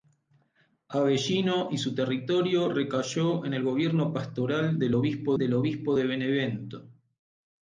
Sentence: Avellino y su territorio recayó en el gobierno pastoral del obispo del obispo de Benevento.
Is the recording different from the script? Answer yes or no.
no